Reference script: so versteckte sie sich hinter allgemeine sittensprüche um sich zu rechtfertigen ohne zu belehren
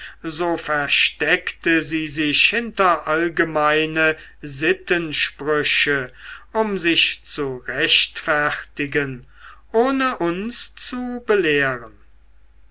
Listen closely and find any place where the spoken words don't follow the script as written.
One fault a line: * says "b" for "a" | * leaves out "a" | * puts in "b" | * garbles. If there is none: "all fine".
* puts in "uns"